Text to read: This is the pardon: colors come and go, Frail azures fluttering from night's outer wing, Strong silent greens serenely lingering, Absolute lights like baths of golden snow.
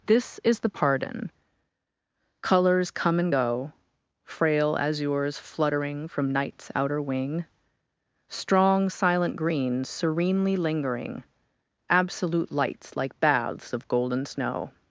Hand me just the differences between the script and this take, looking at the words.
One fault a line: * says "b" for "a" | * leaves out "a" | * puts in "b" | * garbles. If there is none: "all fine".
all fine